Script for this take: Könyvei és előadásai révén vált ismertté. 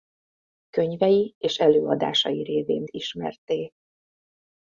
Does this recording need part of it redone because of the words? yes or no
yes